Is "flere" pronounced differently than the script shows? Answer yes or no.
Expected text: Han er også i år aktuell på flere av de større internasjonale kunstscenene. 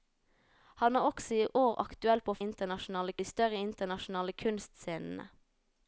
yes